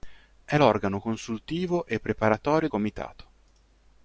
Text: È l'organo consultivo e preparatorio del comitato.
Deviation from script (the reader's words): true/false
true